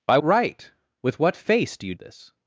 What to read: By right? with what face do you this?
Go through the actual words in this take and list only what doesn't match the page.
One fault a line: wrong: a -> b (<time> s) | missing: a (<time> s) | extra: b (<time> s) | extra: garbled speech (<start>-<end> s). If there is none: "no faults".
no faults